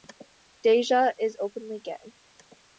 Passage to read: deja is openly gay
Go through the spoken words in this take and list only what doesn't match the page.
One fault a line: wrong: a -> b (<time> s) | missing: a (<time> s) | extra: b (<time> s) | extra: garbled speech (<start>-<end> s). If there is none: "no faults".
no faults